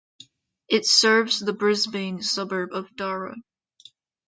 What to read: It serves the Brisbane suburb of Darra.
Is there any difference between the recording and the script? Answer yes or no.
no